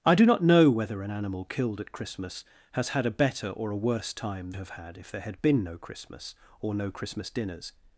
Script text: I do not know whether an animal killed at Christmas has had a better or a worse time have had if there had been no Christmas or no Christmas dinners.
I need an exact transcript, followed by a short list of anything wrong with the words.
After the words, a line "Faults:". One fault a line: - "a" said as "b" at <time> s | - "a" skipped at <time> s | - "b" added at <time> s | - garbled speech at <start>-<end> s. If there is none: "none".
I do not know whether an animal killed at Christmas has had a better or a worse time have had if there had been no Christmas or no Christmas dinners.
Faults:
none